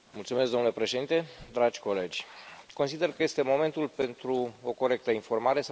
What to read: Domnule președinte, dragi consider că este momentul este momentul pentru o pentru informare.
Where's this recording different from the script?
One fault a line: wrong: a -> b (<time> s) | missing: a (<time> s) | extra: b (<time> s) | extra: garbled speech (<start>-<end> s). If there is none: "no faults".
extra: colegi (1.8 s)
missing: este momentul (3.9 s)
wrong: pentru -> corectă (4.7 s)